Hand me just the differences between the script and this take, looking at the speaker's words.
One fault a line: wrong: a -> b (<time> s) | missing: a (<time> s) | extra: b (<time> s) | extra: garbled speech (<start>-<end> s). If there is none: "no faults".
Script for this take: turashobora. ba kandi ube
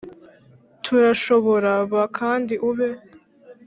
no faults